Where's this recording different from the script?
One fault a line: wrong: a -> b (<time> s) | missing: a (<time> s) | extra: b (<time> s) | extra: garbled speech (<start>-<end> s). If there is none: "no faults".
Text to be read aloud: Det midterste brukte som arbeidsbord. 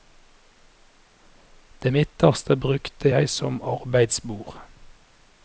extra: jeg (3.1 s)